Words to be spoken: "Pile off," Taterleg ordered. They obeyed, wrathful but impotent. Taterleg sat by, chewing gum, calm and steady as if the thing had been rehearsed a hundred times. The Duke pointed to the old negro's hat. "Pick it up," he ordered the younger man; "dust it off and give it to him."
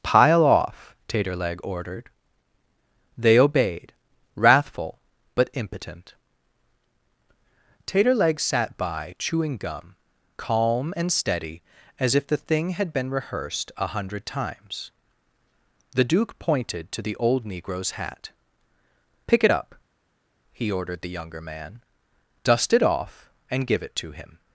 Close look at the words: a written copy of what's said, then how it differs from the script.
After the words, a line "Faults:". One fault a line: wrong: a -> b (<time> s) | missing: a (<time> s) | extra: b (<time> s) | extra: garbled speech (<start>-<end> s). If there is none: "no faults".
"Pile off," Taterleg ordered. They obeyed, wrathful but impotent. Taterleg sat by, chewing gum, calm and steady as if the thing had been rehearsed a hundred times. The Duke pointed to the old negro's hat. "Pick it up," he ordered the younger man; "dust it off and give it to him."
Faults:
no faults